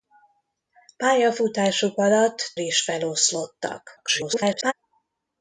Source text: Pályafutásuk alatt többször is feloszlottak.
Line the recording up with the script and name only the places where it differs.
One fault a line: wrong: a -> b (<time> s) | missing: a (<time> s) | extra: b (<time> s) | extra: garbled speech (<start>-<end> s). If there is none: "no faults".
missing: többször (2.5 s)
extra: garbled speech (4.0-4.7 s)